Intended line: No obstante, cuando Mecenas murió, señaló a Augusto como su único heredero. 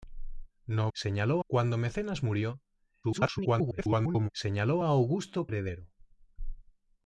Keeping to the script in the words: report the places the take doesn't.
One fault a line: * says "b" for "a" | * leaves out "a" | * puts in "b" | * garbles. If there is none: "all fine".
* says "señaló" for "obstante"
* garbles
* leaves out "como su único"